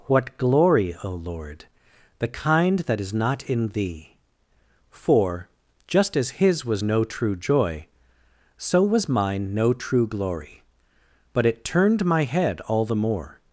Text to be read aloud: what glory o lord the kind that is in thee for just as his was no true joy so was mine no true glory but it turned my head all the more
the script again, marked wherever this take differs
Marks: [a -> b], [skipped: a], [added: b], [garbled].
what glory o lord the kind that is [added: not] in thee for just as his was no true joy so was mine no true glory but it turned my head all the more